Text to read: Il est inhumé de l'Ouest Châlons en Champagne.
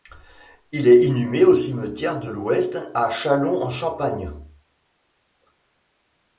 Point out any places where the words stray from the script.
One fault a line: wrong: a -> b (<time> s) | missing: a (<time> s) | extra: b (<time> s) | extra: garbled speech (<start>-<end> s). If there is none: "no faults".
extra: au Cimetière (1.4 s)
extra: à (2.9 s)